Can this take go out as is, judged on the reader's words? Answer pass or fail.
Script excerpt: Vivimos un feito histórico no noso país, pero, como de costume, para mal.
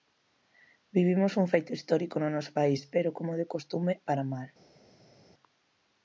pass